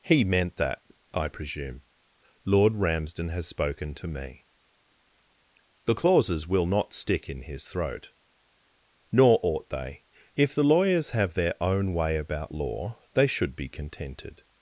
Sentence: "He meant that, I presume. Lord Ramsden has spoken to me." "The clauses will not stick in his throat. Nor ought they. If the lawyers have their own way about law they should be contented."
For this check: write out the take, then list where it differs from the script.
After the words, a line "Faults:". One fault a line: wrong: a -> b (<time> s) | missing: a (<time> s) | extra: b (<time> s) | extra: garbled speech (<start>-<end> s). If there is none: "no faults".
"He meant that, I presume. Lord Ramsden has spoken to me." "The clauses will not stick in his throat. Nor ought they. If the lawyers have their own way about law they should be contented."
Faults:
no faults